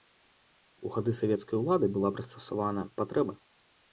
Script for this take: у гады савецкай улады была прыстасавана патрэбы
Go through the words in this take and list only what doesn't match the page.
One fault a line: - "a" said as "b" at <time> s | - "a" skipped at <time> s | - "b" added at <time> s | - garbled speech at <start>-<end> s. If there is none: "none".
none